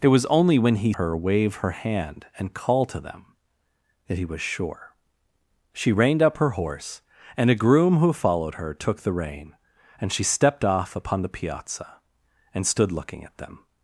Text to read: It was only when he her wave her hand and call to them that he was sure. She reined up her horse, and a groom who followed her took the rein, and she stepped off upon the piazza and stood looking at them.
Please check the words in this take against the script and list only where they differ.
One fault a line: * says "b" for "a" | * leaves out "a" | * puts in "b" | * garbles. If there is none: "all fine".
all fine